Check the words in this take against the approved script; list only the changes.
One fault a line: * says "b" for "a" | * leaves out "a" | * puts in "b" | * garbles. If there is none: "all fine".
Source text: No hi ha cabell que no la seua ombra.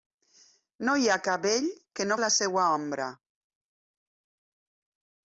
all fine